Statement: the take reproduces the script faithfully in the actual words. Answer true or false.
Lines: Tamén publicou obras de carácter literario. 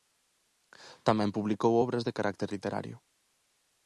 true